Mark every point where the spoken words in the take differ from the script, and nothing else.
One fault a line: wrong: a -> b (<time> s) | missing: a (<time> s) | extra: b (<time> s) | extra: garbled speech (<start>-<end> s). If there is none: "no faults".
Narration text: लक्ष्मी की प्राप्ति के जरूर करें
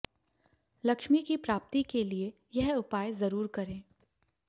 extra: लिए यह उपाय (2.0 s)